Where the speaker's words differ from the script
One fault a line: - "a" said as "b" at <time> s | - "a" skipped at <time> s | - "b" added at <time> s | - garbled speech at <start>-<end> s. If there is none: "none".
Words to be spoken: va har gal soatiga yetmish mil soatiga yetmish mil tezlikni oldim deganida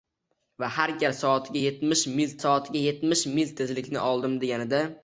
none